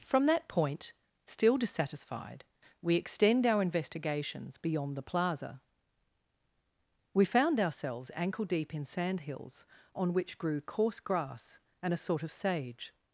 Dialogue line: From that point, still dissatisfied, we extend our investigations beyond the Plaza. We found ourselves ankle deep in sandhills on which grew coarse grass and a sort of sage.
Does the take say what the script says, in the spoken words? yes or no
yes